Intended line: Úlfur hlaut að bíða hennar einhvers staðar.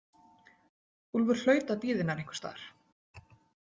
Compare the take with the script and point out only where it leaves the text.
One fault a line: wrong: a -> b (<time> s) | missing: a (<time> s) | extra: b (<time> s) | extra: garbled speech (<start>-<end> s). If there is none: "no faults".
no faults